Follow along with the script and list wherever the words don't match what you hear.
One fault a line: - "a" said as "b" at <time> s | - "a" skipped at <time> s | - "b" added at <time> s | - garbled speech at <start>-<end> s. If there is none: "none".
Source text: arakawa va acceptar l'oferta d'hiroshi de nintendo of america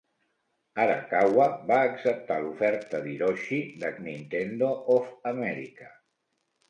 none